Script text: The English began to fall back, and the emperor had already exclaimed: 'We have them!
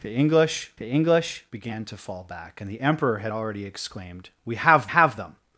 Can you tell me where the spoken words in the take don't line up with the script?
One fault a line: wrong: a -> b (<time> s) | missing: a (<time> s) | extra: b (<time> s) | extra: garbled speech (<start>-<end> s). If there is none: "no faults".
extra: the English (0.8 s)
extra: have (4.9 s)